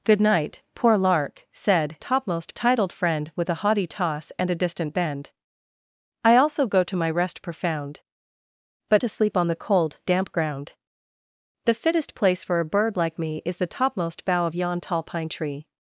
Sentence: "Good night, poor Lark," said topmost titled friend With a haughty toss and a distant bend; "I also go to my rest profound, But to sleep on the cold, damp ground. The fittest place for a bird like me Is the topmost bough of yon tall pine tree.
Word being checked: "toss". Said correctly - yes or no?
yes